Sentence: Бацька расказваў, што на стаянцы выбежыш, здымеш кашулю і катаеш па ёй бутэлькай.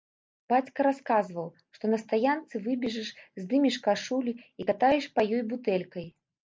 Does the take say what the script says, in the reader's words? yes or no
yes